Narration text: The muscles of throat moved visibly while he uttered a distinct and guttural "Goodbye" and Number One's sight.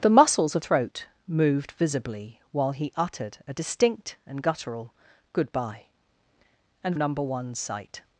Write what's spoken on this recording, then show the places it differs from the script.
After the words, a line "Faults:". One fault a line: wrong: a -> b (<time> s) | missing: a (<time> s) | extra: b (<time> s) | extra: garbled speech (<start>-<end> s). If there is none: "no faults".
The muscles of throat moved visibly while he uttered a distinct and guttural "Goodbye" and Number One's sight.
Faults:
no faults